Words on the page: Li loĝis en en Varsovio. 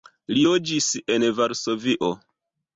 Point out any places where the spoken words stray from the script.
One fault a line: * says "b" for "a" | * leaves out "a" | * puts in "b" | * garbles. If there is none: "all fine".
* leaves out "en"